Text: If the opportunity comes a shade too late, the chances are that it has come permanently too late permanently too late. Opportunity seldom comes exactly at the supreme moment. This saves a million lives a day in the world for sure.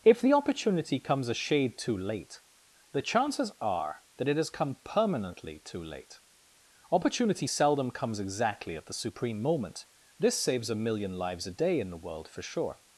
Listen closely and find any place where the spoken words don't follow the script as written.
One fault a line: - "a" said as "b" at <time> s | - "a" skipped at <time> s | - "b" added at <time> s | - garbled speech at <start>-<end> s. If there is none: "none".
- "permanently too late" skipped at 6.2 s